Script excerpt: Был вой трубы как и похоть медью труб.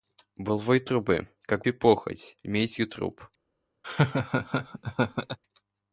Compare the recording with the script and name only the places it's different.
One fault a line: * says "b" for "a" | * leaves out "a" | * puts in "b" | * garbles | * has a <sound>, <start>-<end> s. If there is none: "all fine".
* has a laugh, 3.8-5.4 s